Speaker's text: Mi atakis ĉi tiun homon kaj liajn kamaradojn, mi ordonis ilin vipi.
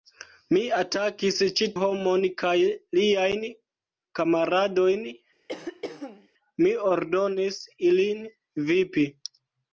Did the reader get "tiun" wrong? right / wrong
wrong